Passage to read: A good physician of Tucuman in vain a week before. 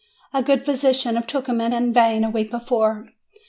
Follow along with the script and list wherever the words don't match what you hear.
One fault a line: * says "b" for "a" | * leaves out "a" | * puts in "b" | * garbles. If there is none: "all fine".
all fine